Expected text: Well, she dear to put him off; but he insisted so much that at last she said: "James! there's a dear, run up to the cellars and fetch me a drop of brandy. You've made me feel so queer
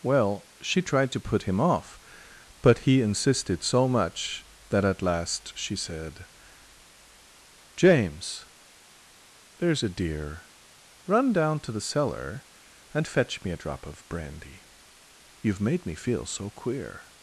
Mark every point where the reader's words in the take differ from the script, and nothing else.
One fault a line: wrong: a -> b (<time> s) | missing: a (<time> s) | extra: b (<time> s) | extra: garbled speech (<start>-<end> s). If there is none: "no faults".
wrong: dear -> tried (0.8 s)
wrong: up -> down (11.3 s)
wrong: cellars -> cellar (11.8 s)